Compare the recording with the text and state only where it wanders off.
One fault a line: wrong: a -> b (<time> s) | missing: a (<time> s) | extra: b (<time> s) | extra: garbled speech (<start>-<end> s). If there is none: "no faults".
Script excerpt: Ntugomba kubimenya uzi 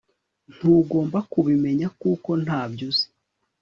extra: kuko ntabyo (2.0 s)